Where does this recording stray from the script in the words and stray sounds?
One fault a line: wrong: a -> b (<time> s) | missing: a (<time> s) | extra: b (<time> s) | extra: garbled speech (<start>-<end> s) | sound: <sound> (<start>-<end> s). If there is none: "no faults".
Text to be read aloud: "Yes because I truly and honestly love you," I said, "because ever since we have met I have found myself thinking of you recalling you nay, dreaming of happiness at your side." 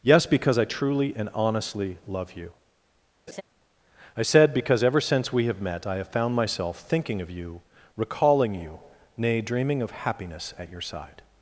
sound: laugh (3.3-3.4 s)